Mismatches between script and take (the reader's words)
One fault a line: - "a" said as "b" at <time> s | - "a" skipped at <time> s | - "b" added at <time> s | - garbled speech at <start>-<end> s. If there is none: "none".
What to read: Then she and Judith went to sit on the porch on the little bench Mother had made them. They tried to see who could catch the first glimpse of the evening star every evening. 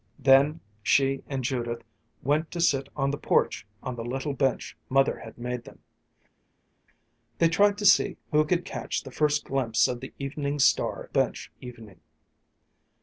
- "every" said as "bench" at 11.1 s